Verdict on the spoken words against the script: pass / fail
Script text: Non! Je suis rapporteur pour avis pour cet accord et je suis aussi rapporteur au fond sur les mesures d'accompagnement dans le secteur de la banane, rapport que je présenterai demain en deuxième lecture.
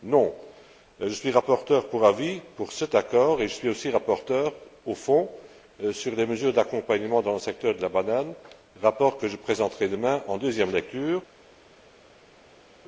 pass